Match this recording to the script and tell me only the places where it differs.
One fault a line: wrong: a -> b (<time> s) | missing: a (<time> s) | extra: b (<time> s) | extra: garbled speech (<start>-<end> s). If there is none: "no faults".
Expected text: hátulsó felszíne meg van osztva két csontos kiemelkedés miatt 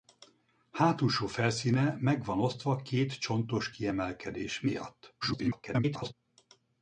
extra: garbled speech (5.2-6.1 s)